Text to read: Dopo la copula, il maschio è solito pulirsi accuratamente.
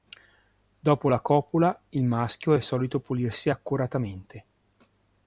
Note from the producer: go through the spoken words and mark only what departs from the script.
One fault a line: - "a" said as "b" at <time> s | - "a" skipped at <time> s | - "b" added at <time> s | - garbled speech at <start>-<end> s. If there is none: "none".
none